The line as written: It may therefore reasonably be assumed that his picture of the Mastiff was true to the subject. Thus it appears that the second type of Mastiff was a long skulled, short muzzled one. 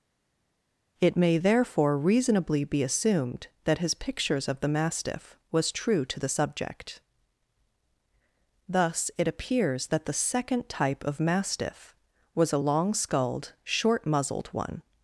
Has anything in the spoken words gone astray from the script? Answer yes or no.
yes